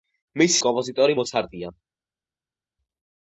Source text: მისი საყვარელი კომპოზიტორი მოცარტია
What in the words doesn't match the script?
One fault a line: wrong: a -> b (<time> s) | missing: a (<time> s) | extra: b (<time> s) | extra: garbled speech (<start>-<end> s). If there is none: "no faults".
missing: საყვარელი (0.6 s)